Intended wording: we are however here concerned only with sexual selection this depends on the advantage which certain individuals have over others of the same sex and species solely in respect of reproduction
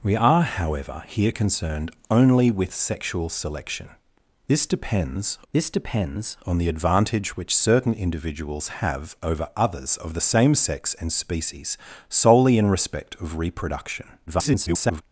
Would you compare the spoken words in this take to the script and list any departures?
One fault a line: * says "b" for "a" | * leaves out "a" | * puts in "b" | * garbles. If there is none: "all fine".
* puts in "this depends"
* garbles